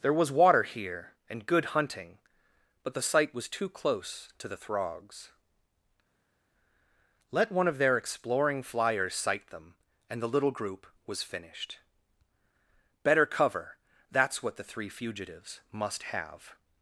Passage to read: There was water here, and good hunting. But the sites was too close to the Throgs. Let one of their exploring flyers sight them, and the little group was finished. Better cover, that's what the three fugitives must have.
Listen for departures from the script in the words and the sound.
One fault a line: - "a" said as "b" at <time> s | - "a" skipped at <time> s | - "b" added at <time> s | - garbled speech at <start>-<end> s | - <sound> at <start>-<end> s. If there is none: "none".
- "sites" said as "site" at 3.0 s